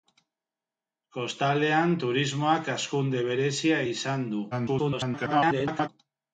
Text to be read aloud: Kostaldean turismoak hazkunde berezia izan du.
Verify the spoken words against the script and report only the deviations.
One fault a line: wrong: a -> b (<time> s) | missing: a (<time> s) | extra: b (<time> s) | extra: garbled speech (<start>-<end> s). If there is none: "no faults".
extra: garbled speech (4.5-5.9 s)